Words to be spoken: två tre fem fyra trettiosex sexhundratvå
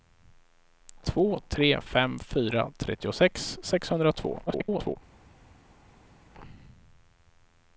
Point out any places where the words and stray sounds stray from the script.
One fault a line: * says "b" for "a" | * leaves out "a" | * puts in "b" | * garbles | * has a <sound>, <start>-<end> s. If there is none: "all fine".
* garbles